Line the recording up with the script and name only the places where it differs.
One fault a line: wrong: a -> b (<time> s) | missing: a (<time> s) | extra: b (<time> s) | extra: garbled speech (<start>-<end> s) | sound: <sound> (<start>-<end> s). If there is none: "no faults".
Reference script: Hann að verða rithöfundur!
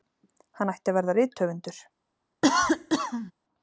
extra: ætti (0.7 s)
sound: cough (2.4-3.3 s)